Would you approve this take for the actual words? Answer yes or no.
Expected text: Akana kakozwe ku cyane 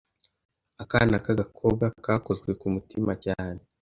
no